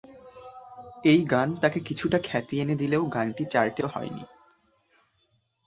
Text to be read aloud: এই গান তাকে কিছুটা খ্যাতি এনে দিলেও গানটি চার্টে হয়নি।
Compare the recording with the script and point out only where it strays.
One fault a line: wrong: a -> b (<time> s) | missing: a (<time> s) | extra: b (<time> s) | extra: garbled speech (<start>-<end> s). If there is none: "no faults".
no faults